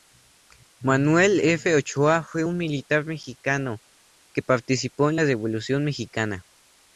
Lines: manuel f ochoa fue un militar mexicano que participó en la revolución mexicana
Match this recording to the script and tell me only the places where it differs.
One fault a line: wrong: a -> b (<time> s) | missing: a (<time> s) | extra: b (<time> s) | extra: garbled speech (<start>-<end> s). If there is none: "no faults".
no faults